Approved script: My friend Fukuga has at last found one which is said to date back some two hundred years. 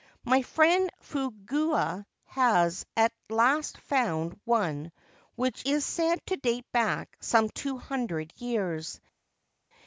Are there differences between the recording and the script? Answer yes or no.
no